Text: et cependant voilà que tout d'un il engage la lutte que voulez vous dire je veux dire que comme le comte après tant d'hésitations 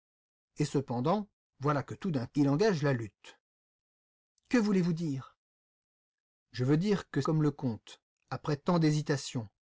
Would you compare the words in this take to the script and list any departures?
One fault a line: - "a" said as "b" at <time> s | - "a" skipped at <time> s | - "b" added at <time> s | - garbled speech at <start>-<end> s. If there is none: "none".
none